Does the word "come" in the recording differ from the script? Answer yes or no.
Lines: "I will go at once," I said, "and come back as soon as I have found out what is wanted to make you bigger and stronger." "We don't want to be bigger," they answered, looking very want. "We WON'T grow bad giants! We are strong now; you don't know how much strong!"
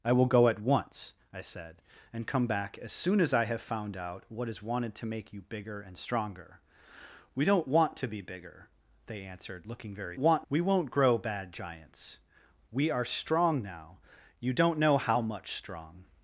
no